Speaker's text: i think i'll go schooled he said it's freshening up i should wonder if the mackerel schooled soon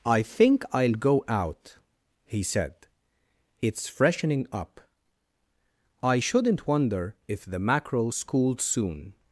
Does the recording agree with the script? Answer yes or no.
no